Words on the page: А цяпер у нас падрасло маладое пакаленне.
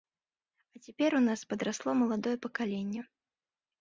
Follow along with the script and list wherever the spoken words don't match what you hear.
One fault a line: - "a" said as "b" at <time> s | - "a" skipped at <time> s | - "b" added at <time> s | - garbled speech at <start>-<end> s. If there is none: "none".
none